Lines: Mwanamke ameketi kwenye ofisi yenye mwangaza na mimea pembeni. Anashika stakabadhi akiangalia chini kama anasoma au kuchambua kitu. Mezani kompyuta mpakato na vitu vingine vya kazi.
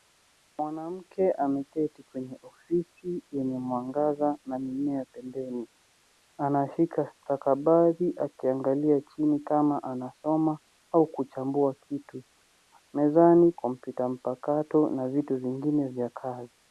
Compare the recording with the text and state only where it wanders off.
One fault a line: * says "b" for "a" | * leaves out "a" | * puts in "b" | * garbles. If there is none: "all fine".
all fine